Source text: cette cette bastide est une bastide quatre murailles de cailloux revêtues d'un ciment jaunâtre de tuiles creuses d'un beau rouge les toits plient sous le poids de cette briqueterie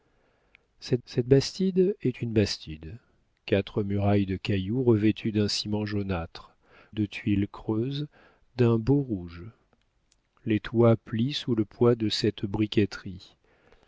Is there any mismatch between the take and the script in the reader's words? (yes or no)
no